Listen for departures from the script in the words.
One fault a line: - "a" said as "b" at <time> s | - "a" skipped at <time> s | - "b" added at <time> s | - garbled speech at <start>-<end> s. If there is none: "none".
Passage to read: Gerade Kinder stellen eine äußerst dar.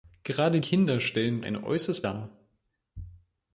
none